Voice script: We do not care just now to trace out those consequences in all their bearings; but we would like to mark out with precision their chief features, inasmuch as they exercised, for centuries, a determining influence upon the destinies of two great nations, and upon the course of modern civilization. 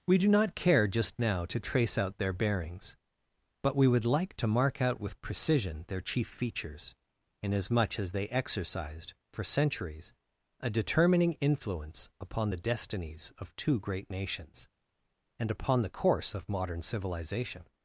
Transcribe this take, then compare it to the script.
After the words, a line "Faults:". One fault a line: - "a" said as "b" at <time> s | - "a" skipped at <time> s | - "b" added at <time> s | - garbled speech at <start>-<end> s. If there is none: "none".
We do not care just now to trace out their bearings; but we would like to mark out with precision their chief features, inasmuch as they exercised, for centuries, a determining influence upon the destinies of two great nations, and upon the course of modern civilization.
Faults:
- "those consequences in all" skipped at 2.2 s